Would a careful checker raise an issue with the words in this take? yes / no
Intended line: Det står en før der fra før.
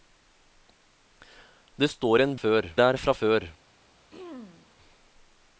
no